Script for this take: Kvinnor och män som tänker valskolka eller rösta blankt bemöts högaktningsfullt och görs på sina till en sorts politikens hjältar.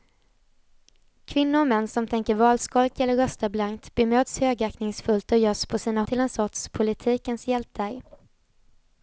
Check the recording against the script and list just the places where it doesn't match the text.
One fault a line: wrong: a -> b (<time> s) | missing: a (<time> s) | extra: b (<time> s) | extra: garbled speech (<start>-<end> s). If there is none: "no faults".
no faults